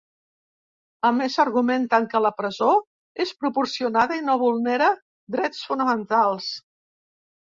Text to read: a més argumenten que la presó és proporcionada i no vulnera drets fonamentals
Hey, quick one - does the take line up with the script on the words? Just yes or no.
yes